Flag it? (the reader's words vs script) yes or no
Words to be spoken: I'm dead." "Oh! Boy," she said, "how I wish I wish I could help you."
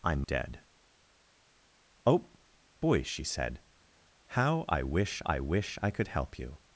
no